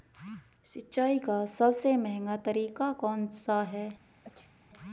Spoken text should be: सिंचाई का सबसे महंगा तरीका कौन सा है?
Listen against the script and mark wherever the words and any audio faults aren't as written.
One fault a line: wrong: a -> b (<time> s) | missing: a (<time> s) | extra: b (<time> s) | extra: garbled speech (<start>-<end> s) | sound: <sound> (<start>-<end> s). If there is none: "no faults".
sound: sneeze (4.2-4.5 s)